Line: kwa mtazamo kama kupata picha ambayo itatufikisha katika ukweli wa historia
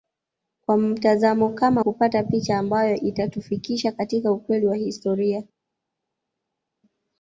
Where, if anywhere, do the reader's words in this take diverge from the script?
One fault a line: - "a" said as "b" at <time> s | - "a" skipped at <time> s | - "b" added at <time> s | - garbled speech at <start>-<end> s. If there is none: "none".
none